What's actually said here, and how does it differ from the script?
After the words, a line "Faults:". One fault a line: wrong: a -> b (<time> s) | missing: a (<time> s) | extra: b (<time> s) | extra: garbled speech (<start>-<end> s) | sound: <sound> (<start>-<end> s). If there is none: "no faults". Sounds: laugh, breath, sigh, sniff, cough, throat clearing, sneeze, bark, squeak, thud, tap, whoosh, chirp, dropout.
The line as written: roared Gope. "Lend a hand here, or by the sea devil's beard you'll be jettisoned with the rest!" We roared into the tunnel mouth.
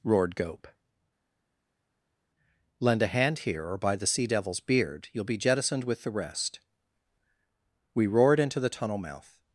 roared Gope. "Lend a hand here, or by the sea devil's beard you'll be jettisoned with the rest!" We roared into the tunnel mouth.
Faults:
no faults